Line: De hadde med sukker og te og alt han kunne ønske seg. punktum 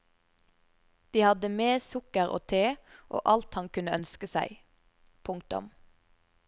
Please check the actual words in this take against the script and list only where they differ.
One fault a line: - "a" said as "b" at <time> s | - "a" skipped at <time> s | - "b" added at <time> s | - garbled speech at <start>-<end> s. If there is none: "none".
none